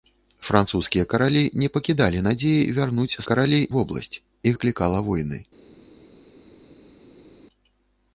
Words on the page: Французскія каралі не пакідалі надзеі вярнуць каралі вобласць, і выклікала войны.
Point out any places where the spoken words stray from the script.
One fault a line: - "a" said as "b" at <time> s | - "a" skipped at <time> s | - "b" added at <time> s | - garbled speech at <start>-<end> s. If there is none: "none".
none